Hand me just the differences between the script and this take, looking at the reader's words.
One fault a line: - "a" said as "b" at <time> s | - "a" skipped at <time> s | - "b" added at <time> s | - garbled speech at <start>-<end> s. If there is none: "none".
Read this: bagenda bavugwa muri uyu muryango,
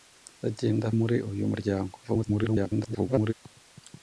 - "bavugwa" skipped at 0.8 s
- garbled speech at 2.0-3.3 s